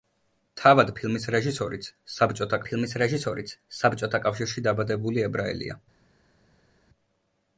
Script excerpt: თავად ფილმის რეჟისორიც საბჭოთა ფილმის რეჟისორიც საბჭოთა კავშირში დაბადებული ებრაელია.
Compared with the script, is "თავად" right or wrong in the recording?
right